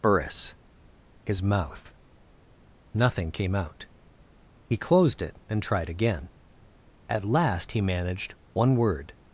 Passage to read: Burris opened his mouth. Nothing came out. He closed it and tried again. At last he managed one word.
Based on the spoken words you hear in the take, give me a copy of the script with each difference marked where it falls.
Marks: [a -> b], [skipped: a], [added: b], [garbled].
Burris [skipped: opened] his mouth. Nothing came out. He closed it and tried again. At last he managed one word.